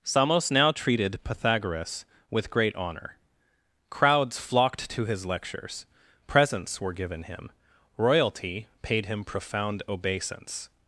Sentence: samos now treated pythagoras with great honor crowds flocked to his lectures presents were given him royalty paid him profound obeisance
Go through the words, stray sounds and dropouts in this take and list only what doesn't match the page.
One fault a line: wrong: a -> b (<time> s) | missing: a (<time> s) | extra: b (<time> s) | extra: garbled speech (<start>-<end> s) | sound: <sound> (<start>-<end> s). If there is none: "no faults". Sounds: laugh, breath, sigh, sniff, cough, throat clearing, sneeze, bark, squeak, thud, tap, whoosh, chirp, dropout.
no faults